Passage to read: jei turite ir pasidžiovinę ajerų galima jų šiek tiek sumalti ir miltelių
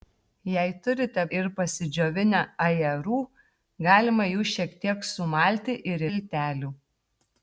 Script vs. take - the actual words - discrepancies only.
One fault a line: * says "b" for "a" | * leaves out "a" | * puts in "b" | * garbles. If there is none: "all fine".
all fine